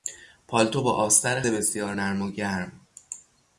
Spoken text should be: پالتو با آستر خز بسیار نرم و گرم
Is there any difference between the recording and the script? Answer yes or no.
yes